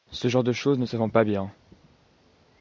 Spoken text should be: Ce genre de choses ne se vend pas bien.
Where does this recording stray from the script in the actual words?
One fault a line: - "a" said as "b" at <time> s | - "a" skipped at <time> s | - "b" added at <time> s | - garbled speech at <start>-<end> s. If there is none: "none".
none